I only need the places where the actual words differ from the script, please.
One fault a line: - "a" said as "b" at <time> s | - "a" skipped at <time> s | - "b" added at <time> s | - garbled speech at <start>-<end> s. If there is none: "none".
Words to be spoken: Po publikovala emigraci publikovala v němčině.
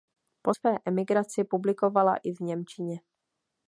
- "publikovala" said as "své" at 0.5 s
- "i" added at 2.2 s